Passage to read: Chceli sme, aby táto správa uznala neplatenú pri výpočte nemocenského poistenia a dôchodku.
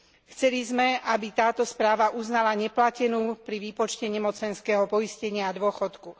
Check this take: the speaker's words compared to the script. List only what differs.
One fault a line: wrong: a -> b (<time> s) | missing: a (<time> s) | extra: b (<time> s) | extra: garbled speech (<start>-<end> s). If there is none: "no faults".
no faults